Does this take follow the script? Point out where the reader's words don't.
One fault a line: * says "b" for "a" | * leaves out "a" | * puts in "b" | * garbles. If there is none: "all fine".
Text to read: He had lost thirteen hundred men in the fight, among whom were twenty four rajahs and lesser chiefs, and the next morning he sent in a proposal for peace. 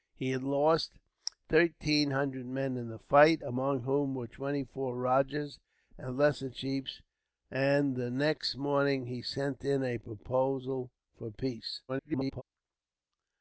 * garbles